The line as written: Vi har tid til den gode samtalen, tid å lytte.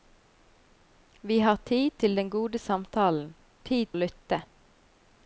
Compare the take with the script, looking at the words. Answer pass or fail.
pass